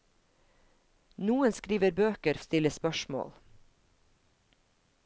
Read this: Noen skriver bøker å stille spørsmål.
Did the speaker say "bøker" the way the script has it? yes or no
yes